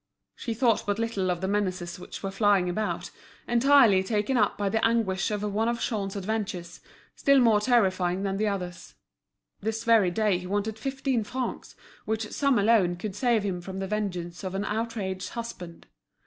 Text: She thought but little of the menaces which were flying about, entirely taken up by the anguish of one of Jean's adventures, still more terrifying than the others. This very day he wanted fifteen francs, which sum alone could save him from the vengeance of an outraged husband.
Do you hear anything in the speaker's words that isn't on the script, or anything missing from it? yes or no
no